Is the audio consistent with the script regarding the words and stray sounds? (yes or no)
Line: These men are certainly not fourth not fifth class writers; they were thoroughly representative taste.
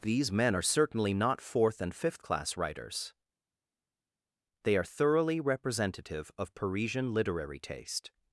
no